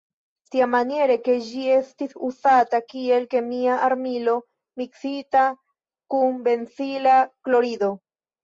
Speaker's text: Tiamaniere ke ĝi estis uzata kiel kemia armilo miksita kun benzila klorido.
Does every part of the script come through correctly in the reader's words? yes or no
yes